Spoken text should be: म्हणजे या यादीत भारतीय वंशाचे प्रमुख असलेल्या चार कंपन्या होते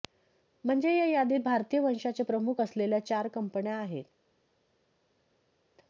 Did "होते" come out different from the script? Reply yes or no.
yes